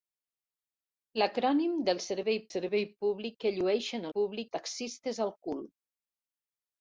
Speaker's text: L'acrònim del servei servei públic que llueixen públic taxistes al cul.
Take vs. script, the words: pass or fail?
pass